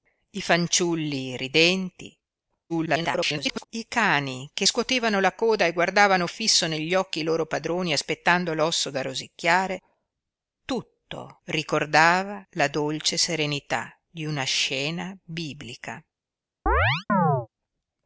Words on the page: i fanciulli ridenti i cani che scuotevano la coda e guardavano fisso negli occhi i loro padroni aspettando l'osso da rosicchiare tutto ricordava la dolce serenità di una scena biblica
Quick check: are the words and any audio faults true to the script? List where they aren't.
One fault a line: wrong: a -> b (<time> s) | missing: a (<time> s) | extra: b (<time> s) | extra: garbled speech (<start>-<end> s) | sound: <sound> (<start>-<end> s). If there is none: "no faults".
extra: garbled speech (2.7-3.6 s)
sound: chirp (16.7-17.5 s)